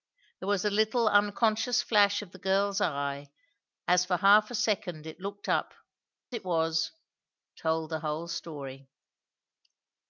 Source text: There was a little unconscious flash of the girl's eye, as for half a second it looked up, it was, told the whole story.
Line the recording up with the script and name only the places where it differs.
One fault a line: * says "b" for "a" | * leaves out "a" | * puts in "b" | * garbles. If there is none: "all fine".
all fine